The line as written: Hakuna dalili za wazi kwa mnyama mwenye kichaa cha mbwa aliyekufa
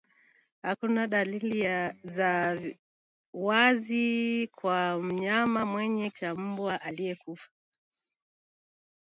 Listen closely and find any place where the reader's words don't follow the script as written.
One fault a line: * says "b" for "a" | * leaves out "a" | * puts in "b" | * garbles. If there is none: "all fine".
* leaves out "kichaa"